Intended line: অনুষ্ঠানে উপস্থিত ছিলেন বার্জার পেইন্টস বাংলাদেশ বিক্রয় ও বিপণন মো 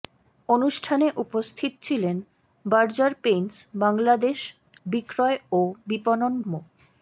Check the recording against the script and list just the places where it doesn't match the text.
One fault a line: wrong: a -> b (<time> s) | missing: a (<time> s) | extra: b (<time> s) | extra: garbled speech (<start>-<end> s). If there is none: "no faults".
no faults